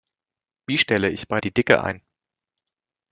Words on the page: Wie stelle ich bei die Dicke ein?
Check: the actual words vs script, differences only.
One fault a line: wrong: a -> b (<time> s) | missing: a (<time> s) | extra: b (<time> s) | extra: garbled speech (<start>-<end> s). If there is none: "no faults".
no faults